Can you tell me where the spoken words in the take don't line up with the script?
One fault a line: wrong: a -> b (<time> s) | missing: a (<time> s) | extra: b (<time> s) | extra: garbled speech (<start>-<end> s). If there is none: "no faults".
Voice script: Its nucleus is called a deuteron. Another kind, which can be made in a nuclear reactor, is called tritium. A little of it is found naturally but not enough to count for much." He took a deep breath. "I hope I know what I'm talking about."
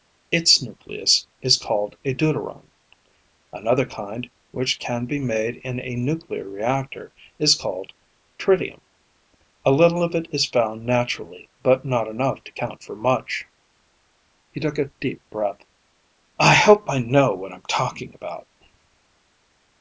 no faults